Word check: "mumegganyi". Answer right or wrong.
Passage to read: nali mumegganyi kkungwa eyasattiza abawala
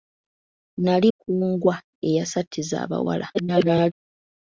wrong